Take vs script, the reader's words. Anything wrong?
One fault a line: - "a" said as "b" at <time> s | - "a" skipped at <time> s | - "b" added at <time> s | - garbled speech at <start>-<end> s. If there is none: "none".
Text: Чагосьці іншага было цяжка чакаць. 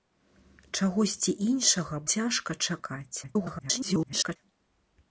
- "было" skipped at 1.9 s
- garbled speech at 3.2-4.4 s